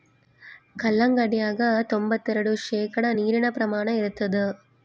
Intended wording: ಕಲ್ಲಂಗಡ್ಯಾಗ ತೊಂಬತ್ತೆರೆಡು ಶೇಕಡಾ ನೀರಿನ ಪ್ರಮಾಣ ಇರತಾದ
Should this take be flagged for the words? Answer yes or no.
no